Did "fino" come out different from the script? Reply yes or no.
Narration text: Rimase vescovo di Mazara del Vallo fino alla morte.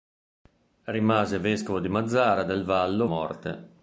yes